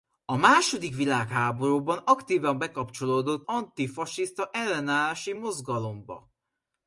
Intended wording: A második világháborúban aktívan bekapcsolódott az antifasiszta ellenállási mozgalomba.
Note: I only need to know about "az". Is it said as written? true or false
false